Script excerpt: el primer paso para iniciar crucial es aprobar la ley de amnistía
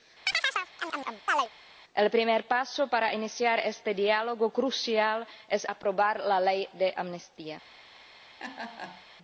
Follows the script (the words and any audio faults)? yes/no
no